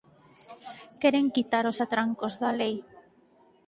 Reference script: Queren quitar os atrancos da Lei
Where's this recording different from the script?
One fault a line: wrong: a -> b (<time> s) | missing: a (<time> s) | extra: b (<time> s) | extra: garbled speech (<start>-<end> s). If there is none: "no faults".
no faults